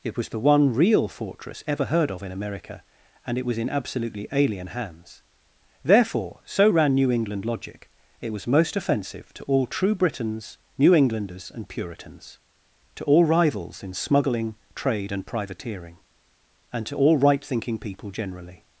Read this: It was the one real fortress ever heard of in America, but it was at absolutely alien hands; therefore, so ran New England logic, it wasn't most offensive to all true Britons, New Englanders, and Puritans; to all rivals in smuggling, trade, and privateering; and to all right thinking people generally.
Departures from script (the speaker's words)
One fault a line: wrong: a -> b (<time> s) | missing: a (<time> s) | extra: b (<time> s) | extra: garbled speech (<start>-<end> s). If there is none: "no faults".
wrong: but -> and (3.2 s)
wrong: at -> in (3.6 s)
wrong: wasn't -> was (8.3 s)